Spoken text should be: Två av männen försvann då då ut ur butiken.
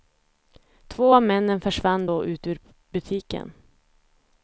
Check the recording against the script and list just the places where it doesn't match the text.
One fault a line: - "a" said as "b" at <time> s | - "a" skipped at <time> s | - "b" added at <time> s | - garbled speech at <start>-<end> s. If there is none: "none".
- "då" skipped at 2.2 s